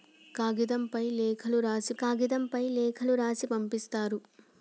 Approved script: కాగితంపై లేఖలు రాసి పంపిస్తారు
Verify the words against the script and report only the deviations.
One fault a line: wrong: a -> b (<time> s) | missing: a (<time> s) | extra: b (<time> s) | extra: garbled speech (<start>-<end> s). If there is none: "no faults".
extra: కాగితంపై లేఖలు రాసి (2.0 s)